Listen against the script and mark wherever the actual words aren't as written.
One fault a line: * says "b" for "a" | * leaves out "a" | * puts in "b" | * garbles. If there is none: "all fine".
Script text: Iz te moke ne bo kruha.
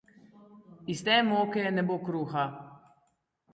all fine